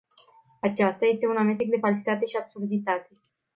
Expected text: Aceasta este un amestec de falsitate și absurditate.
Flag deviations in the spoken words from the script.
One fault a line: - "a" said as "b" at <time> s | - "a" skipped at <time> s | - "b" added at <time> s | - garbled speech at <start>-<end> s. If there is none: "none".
none